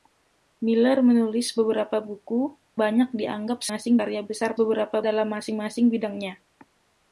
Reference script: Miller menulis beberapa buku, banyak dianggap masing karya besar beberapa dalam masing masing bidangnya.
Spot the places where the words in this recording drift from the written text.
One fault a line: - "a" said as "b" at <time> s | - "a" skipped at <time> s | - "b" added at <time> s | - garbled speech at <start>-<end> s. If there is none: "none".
none